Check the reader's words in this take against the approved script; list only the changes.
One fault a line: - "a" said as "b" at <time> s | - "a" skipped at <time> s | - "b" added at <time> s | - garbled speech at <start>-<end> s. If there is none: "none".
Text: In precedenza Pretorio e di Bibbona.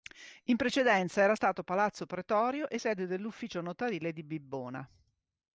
- "era stato Palazzo" added at 1.2 s
- "sede dell'ufficio notarile" added at 2.7 s